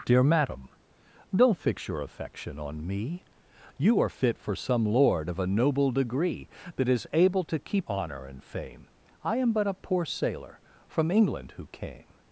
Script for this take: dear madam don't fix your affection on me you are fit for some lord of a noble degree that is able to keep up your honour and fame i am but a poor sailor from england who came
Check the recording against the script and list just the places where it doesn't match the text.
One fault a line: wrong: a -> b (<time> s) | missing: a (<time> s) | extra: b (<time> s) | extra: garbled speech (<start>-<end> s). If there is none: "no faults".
missing: up your (7.9 s)